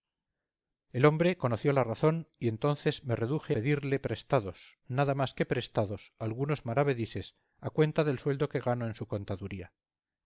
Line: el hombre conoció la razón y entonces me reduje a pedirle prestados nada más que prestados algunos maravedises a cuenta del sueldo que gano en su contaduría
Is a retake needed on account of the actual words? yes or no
yes